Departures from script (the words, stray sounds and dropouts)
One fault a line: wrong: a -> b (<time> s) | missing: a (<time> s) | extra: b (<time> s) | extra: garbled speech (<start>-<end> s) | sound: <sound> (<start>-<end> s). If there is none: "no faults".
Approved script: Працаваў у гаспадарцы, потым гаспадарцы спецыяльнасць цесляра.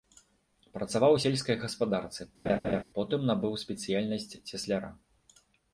extra: сельскай (1.2 s)
sound: laugh (2.4-2.8 s)
wrong: гаспадарцы -> набыў (3.3 s)